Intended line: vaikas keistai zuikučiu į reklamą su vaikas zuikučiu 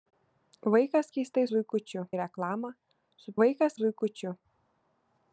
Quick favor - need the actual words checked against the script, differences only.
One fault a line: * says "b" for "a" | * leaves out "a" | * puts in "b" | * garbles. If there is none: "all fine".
all fine